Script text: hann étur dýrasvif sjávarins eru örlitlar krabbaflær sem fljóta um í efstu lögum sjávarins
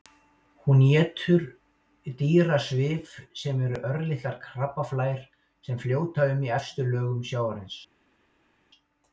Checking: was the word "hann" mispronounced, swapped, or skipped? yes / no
yes